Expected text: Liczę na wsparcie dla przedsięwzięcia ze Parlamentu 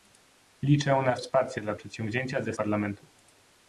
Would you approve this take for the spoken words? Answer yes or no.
yes